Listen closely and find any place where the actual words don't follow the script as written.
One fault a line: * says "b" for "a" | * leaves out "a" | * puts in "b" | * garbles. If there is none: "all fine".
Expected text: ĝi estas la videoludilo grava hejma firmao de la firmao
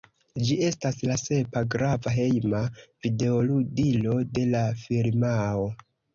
* says "sepa" for "videoludilo"
* says "videoludilo" for "firmao"